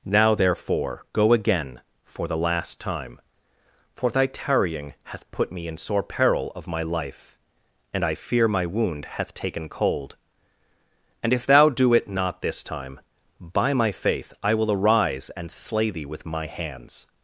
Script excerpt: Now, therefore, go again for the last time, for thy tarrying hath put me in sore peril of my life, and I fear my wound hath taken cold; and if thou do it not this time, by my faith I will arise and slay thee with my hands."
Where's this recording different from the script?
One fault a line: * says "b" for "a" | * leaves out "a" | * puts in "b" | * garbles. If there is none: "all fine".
all fine